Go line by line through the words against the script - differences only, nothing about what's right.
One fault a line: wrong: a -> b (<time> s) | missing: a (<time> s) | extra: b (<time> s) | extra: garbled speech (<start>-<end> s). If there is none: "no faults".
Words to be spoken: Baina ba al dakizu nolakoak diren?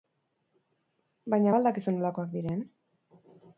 no faults